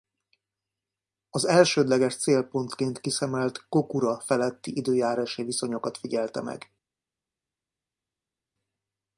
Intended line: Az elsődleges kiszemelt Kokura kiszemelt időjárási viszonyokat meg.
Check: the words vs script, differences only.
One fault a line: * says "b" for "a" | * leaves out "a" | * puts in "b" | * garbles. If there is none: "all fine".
* puts in "célpontként"
* says "feletti" for "kiszemelt"
* puts in "figyelte"